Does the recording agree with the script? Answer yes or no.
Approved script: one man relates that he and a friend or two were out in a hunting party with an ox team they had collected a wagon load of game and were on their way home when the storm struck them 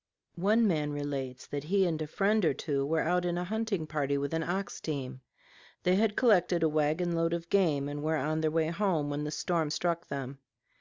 yes